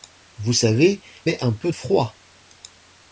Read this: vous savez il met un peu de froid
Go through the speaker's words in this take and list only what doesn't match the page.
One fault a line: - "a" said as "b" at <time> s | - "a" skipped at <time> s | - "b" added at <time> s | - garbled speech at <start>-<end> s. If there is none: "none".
- "il" skipped at 1.0 s
- "de" skipped at 1.7 s